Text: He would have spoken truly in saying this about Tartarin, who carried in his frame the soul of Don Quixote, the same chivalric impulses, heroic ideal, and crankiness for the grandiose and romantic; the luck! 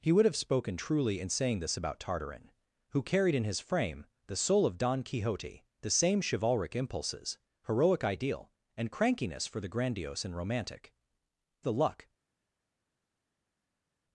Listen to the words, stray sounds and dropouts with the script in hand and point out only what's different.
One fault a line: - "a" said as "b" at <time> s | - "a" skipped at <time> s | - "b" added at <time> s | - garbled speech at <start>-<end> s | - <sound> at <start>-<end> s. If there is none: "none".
none